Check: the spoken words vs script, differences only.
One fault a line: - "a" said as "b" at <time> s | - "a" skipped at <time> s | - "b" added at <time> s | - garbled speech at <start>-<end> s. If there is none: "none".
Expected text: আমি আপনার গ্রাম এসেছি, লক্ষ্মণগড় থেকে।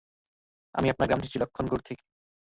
none